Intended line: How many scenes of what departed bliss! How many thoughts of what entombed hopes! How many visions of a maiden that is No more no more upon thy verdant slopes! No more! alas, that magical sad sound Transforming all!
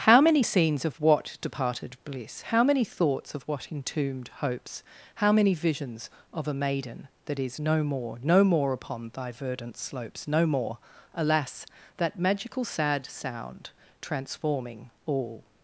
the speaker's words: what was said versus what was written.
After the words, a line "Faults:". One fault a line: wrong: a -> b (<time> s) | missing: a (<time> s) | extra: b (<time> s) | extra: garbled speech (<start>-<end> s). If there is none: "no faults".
How many scenes of what departed bliss! How many thoughts of what entombed hopes! How many visions of a maiden that is No more no more upon thy verdant slopes! No more! alas, that magical sad sound Transforming all!
Faults:
no faults